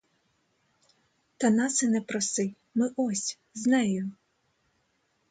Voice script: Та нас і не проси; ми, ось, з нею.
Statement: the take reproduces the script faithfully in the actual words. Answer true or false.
true